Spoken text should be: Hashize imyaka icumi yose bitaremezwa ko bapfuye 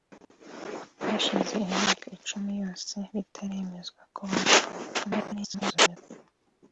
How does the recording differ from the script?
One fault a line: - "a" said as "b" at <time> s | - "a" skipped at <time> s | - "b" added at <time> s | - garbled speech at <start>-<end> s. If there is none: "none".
- garbled speech at 4.9-6.0 s